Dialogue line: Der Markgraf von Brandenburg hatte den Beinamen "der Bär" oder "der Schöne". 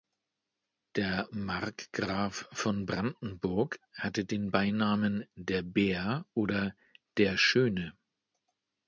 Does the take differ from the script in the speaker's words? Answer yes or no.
no